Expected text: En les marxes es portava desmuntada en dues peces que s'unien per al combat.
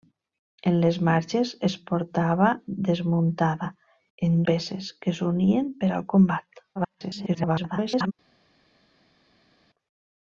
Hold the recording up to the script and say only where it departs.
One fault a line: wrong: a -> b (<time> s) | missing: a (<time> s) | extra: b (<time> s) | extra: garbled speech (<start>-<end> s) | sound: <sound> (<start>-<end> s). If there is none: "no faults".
missing: dues (4.4 s)
extra: garbled speech (6.8-8.1 s)